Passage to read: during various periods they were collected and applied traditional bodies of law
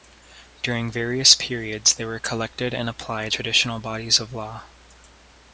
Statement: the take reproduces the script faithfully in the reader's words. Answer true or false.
true